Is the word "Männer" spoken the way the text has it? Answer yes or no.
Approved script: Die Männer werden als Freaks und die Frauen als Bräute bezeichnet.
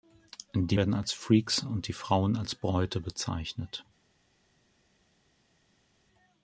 no